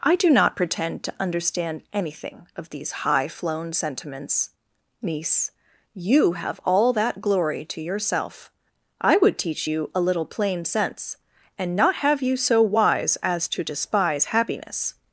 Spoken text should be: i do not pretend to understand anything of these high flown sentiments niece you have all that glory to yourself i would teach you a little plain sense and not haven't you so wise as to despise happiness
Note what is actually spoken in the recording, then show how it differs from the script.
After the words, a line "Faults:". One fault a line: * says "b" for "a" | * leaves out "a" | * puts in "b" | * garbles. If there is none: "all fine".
i do not pretend to understand anything of these high flown sentiments niece you have all that glory to yourself i would teach you a little plain sense and not have you so wise as to despise happiness
Faults:
* says "have" for "haven't"